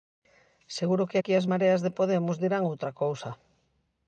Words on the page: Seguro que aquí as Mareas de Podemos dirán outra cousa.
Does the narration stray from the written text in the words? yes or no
no